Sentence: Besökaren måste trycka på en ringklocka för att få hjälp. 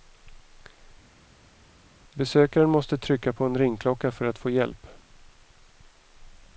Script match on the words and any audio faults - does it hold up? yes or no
yes